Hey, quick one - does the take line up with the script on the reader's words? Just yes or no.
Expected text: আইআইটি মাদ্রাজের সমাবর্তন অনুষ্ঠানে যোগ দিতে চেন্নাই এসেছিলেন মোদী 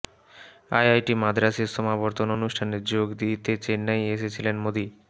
yes